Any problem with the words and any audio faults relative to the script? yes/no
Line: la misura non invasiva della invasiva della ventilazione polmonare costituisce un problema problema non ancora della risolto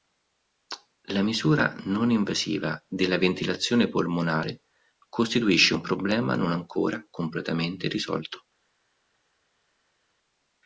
yes